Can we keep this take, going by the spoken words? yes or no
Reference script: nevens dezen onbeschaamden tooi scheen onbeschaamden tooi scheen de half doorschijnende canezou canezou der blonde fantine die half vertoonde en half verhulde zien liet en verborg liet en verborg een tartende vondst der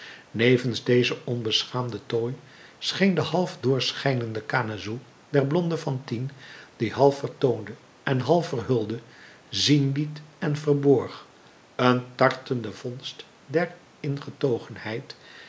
no